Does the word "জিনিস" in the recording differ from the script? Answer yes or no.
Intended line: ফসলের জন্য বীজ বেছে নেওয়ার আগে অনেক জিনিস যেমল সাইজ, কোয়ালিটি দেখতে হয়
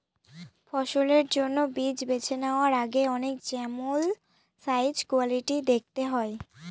yes